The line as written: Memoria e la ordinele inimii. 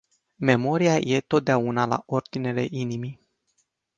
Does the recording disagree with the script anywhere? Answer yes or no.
yes